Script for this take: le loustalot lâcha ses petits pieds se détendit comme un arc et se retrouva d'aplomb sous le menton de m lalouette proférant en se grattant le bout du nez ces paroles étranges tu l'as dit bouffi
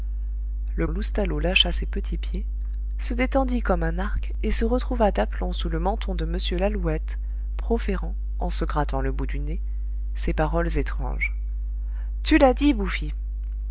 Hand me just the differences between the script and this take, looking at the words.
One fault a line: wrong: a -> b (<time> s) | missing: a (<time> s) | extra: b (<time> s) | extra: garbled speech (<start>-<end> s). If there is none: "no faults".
no faults